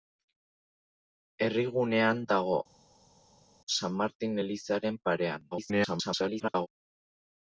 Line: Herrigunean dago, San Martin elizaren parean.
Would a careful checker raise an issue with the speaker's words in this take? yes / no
yes